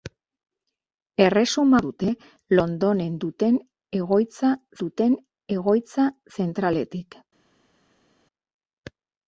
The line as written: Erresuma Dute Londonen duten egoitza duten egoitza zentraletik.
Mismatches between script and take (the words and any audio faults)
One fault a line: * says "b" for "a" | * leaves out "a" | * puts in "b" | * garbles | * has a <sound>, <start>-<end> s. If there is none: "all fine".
all fine